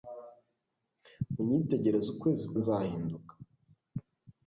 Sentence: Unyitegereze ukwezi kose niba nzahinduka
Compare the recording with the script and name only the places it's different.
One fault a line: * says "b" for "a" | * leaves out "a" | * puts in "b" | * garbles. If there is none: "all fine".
* leaves out "kose niba"